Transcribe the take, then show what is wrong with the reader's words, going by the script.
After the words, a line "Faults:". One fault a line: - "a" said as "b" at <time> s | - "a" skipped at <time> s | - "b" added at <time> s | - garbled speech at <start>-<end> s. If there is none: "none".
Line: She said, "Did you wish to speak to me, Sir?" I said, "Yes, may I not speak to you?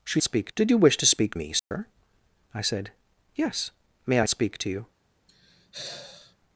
She speak, "Did you wish to speak me, Sir?" I said, "Yes, may I speak to you?
Faults:
- "said" said as "speak" at 0.2 s
- "to" skipped at 1.3 s
- "not" skipped at 4.3 s